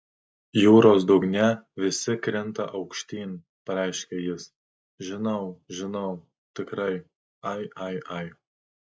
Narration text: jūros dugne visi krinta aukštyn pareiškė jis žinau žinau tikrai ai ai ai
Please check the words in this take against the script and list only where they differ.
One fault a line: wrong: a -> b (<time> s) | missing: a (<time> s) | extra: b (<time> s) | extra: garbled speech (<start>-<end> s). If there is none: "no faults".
no faults